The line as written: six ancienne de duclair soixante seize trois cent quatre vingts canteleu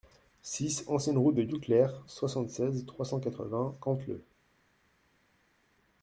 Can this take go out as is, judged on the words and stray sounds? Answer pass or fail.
fail